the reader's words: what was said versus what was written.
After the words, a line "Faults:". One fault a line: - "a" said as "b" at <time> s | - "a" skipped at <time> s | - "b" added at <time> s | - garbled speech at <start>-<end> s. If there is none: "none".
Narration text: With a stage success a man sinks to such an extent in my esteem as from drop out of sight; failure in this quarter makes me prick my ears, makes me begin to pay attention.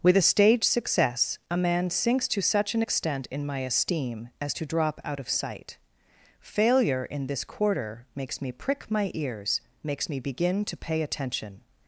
With a stage success a man sinks to such an extent in my esteem as to drop out of sight; failure in this quarter makes me prick my ears, makes me begin to pay attention.
Faults:
- "from" said as "to" at 4.5 s